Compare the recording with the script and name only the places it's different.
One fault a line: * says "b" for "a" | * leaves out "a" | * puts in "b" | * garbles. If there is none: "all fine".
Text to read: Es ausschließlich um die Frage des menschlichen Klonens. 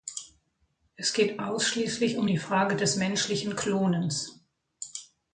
* puts in "geht"